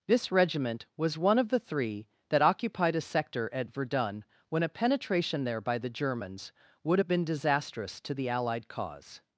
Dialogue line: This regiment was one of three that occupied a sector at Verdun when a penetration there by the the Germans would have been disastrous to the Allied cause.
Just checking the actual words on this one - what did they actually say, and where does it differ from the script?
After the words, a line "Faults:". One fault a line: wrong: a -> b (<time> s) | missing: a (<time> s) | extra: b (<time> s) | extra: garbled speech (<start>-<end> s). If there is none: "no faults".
This regiment was one of the three that occupied a sector at Verdun when a penetration there by the Germans would have been disastrous to the Allied cause.
Faults:
extra: the (1.5 s)
missing: the (5.9 s)